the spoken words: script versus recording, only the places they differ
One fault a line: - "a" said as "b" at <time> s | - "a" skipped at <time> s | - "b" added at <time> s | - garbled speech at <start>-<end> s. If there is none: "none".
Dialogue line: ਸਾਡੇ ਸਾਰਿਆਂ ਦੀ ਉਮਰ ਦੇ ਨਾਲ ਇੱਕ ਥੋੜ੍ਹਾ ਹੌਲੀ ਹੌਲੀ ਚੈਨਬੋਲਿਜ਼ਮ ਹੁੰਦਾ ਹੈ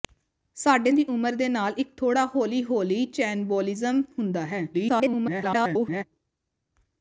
- "ਸਾਰਿਆਂ" skipped at 0.9 s
- garbled speech at 4.7-6.0 s